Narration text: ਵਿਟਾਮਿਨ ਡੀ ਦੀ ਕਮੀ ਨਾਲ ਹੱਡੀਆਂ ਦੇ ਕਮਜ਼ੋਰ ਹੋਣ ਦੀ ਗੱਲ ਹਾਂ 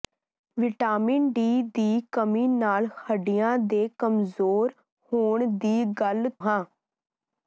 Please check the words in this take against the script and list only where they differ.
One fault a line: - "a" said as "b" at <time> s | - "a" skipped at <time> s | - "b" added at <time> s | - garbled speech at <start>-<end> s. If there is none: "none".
none